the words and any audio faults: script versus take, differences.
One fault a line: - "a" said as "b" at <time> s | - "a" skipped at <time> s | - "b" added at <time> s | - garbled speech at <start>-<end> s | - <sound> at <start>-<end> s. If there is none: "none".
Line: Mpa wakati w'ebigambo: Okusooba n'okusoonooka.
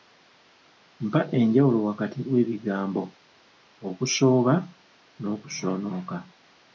- "enjawulo" added at 1.4 s